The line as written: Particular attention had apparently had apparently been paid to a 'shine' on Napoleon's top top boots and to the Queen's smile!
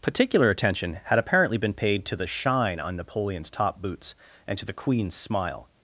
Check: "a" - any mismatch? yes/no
yes